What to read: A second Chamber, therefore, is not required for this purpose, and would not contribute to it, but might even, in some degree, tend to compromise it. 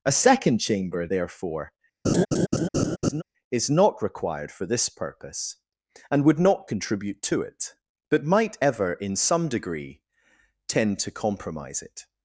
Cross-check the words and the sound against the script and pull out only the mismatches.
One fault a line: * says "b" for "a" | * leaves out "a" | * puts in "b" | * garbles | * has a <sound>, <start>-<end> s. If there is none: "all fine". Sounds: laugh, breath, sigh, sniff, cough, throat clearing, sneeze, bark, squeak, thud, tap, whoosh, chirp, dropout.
* has a laugh, 2.0-3.2 s
* says "ever" for "even"